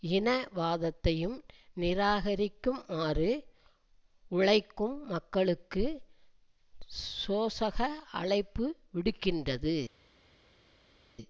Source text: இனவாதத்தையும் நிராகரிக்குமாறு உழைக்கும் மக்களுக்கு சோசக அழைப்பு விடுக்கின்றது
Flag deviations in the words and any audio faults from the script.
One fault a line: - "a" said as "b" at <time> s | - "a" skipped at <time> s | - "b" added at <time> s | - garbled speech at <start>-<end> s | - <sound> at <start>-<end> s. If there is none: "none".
none